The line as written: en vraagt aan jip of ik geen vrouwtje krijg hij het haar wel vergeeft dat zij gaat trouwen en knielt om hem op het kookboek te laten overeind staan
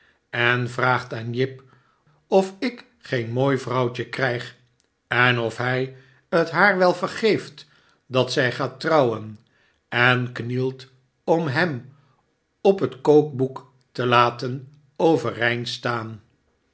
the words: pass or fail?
fail